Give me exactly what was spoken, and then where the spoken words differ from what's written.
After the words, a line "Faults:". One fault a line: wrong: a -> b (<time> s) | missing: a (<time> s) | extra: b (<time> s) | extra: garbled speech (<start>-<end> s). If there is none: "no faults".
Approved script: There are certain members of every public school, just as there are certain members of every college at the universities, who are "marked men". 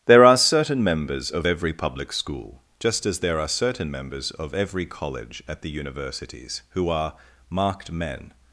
There are certain members of every public school, just as there are certain members of every college at the universities, who are "marked men".
Faults:
no faults